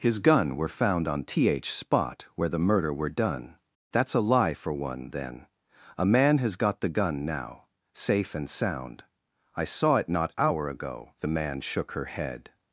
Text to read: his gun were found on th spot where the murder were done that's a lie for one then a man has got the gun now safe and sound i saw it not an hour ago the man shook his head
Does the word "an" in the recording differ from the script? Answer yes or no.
yes